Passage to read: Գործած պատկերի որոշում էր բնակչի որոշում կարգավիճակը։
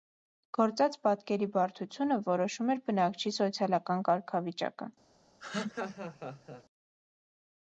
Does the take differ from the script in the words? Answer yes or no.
yes